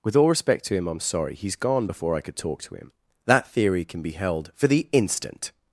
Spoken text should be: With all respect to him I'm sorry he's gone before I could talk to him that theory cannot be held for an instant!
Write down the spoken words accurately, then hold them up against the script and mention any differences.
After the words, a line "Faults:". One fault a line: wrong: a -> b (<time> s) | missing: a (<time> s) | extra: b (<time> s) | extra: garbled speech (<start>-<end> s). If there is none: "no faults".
With all respect to him I'm sorry he's gone before I could talk to him that theory can be held for the instant!
Faults:
wrong: cannot -> can (3.8 s)
wrong: an -> the (4.7 s)